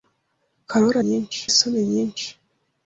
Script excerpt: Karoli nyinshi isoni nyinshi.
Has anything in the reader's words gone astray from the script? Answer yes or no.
no